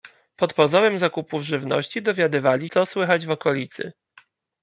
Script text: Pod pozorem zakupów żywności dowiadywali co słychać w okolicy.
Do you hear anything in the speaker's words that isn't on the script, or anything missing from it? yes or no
no